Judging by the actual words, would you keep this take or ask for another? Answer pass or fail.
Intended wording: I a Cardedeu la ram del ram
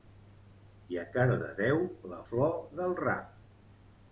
fail